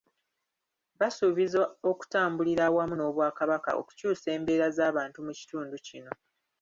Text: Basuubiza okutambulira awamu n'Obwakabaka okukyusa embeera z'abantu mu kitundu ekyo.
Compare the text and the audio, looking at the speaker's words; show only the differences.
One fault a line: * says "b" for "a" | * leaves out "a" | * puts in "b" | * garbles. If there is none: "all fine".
* says "kino" for "ekyo"